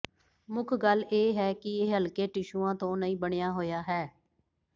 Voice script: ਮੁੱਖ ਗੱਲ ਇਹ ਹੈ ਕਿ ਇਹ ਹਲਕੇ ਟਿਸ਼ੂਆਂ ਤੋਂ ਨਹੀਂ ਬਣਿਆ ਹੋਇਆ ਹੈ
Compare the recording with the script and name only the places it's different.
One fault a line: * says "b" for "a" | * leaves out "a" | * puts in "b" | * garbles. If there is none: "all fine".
all fine